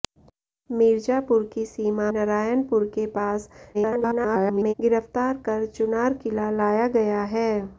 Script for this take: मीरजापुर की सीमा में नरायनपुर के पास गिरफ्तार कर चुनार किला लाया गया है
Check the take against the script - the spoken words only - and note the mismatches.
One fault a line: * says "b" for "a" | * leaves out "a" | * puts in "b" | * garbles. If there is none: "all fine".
* leaves out "में"
* garbles